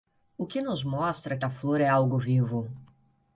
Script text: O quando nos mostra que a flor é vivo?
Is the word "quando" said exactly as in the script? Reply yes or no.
no